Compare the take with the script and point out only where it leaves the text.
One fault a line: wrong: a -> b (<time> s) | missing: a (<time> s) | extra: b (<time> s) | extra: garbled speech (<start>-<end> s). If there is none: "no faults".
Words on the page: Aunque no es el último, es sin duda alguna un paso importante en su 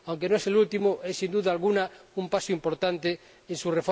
no faults